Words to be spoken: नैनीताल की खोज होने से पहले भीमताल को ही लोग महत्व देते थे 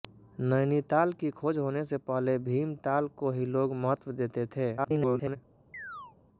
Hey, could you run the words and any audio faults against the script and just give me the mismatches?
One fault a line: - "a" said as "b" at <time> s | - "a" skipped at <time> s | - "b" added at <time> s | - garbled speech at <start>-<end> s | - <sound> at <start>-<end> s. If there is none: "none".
- garbled speech at 4.8-5.4 s
- chirp at 5.7-6.2 s